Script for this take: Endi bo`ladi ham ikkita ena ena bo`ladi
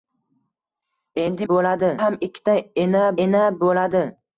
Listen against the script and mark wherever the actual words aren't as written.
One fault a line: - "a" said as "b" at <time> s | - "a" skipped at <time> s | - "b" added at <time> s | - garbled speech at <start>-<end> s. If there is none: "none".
none